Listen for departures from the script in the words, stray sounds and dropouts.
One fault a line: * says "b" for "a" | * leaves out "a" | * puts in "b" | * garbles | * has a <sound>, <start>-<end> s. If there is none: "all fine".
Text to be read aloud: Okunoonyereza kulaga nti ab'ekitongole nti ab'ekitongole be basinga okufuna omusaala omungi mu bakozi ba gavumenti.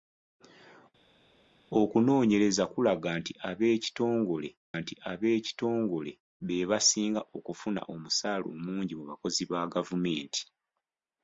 all fine